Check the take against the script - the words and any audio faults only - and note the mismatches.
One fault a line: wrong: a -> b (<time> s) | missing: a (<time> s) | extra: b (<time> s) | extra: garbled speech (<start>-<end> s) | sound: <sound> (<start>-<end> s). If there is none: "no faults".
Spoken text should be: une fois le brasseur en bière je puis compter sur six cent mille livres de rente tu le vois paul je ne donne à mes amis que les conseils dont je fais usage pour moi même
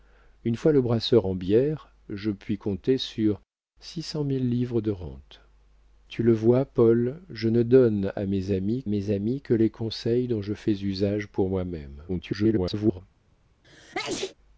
extra: mes amis (8.9 s)
extra: garbled speech (12.1-13.0 s)
sound: sneeze (13.6-14.3 s)